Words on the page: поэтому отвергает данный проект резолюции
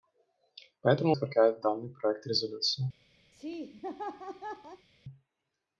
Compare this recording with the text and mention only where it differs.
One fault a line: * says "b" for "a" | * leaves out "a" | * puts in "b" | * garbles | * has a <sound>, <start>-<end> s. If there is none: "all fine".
* has a laugh, 3.3-4.9 s